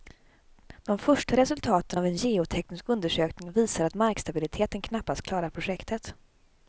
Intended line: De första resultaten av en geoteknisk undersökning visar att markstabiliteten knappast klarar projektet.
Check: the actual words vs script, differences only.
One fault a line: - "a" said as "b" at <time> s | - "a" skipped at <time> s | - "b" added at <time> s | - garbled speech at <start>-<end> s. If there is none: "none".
none